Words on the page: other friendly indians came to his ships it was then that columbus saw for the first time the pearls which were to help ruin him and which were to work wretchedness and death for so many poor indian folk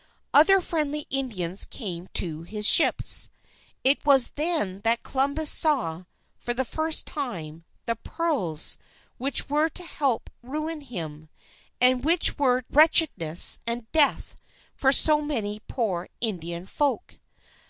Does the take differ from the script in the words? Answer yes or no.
yes